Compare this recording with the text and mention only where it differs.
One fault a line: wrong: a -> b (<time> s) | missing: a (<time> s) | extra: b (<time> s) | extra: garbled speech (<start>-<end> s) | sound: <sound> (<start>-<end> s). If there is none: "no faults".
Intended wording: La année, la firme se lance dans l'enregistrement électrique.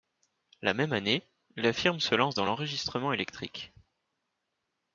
extra: même (0.7 s)